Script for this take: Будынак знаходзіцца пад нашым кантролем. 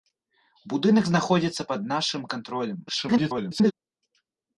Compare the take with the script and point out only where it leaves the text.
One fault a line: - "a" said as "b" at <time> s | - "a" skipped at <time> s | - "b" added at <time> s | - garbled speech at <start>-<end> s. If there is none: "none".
- garbled speech at 2.9-3.7 s